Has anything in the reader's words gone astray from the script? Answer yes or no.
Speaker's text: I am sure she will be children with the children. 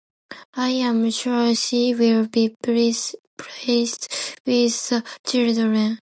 yes